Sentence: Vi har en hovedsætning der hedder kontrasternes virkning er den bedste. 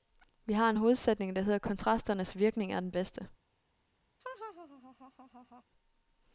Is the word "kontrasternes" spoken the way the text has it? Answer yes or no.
yes